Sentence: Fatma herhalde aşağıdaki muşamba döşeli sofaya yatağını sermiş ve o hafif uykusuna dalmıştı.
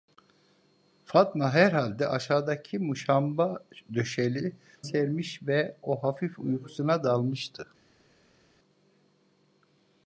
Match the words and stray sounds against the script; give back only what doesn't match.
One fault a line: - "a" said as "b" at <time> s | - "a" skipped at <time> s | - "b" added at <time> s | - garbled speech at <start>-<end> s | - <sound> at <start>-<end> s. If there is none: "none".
- "sofaya yatağını" skipped at 4.5 s